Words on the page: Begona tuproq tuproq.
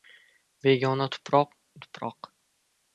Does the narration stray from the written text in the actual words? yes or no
no